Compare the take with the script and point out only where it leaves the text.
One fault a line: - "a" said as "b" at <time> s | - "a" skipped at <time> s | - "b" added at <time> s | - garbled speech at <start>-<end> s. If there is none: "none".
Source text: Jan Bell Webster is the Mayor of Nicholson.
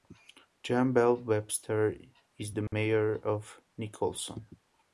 none